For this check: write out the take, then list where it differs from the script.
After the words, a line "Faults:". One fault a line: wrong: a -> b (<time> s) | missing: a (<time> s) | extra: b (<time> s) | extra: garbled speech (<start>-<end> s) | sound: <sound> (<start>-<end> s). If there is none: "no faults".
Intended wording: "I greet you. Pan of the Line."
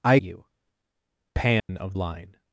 "I you. Pan of Line."
Faults:
missing: greet (0.2 s)
sound: dropout (1.6-1.7 s)
missing: the (2.0 s)